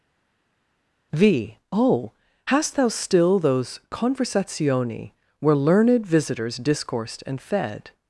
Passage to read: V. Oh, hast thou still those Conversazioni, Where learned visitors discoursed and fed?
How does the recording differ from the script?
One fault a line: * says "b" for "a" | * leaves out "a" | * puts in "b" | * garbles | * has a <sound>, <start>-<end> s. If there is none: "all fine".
all fine